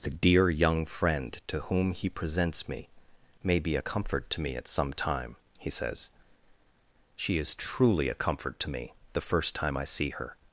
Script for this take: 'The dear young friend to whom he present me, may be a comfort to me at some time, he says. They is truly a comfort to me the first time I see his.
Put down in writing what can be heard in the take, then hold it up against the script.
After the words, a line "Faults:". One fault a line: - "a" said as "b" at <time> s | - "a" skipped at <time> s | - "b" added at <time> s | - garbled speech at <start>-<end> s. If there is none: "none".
'The dear young friend to whom he presents me, may be a comfort to me at some time, he says. She is truly a comfort to me the first time I see her.
Faults:
- "present" said as "presents" at 2.1 s
- "They" said as "She" at 7.2 s
- "his" said as "her" at 10.1 s